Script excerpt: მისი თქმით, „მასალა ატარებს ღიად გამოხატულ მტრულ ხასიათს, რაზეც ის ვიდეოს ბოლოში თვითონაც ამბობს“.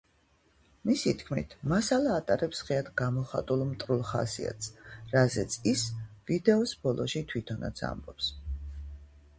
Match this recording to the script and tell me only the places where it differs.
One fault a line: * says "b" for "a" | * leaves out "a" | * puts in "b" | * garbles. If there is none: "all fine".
all fine